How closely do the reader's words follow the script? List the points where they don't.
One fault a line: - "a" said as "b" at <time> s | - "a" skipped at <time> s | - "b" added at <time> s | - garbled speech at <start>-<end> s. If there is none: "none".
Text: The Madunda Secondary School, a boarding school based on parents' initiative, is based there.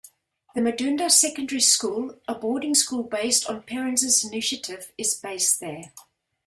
none